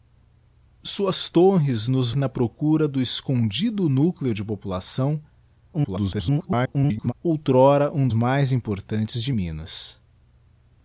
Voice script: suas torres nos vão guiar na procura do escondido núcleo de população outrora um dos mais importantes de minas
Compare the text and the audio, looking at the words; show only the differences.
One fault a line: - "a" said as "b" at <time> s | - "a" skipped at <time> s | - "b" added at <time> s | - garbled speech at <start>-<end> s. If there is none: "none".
- "vão guiar" skipped at 2.1 s
- garbled speech at 5.7-7.1 s
- "dos" skipped at 8.1 s